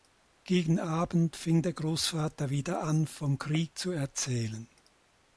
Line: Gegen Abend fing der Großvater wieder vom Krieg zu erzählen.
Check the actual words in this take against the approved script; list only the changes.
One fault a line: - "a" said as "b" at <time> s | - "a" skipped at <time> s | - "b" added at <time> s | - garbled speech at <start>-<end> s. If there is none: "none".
- "an" added at 2.8 s